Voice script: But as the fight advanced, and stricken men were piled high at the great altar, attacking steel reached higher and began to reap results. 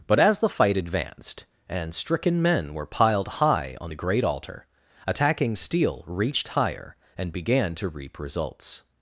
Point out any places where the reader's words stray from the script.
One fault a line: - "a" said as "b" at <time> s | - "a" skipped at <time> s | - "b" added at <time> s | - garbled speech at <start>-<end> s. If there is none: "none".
- "at" said as "on" at 3.8 s